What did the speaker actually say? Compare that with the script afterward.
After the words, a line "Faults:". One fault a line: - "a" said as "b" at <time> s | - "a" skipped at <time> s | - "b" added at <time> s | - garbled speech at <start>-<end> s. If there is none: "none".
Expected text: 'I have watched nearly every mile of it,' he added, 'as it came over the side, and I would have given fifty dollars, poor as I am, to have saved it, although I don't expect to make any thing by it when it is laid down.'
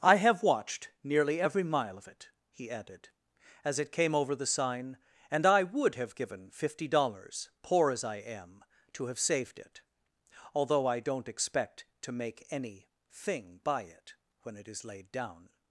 'I have watched nearly every mile of it,' he added, 'as it came over the sign, and I would have given fifty dollars, poor as I am, to have saved it, although I don't expect to make any thing by it when it is laid down.'
Faults:
- "side" said as "sign" at 4.5 s